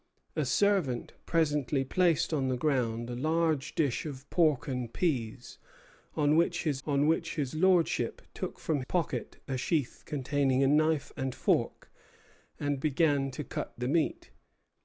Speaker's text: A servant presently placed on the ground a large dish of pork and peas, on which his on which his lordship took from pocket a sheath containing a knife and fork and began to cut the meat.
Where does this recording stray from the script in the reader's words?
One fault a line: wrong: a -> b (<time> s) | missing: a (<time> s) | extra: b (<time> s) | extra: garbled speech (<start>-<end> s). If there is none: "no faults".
no faults